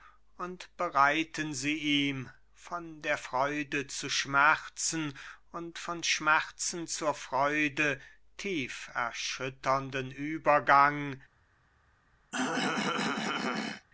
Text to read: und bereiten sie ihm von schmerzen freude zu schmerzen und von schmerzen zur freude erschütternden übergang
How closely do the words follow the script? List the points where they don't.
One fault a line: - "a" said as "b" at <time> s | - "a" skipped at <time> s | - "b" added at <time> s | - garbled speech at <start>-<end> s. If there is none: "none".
- "schmerzen" said as "der" at 3.0 s
- "tief" added at 8.4 s